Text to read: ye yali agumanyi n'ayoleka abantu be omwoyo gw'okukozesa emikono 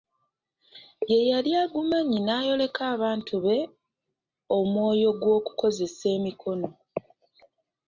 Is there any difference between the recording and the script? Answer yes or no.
no